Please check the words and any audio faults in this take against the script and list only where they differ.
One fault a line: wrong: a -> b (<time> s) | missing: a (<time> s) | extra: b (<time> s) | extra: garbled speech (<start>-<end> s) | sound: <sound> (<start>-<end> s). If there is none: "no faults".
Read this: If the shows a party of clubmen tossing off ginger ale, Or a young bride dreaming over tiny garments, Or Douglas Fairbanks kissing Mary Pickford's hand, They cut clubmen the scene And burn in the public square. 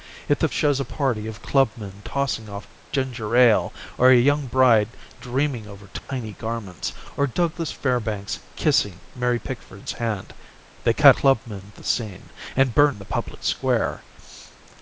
sound: dropout (6.0-6.1 s)